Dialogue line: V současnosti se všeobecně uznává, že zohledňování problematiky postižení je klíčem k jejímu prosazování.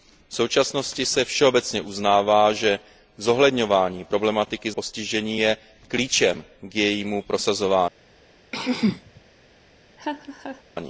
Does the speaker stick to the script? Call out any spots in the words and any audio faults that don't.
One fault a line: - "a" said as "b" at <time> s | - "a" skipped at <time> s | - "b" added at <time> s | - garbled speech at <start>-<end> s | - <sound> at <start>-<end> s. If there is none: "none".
- throat clearing at 8.5-9.2 s
- laugh at 10.0-10.6 s